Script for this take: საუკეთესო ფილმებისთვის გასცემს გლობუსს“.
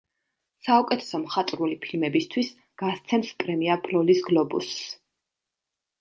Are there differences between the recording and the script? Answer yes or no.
yes